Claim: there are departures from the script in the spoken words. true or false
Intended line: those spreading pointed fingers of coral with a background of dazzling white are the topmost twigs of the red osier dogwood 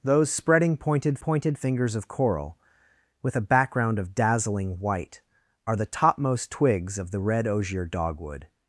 true